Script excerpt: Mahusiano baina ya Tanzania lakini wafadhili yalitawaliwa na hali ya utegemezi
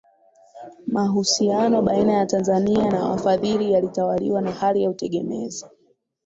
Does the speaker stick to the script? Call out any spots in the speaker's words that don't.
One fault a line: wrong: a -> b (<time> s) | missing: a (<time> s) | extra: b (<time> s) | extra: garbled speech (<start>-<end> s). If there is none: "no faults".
wrong: lakini -> na (2.9 s)